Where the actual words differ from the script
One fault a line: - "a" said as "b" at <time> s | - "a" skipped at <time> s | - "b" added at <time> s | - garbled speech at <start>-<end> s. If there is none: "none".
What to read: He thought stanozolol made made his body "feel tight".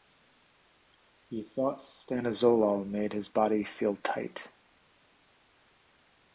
- "made" skipped at 3.1 s